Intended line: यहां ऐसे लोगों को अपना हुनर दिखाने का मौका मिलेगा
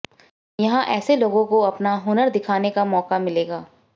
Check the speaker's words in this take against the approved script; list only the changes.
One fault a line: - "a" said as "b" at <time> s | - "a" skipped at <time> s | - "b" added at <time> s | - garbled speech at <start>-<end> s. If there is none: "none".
none